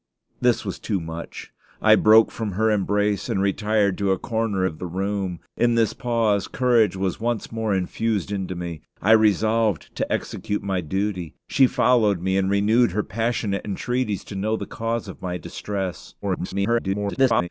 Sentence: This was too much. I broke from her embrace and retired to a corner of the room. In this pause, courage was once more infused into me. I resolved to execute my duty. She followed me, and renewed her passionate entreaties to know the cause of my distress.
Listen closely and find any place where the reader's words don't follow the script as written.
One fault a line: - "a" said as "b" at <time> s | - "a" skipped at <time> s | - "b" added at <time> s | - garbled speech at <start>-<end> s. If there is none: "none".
- garbled speech at 16.2-17.5 s